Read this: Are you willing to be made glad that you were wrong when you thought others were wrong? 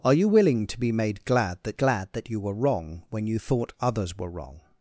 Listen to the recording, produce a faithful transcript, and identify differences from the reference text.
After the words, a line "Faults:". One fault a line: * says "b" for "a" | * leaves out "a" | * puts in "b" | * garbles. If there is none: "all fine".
Are you willing to be made glad that glad that you were wrong when you thought others were wrong?
Faults:
* puts in "glad that"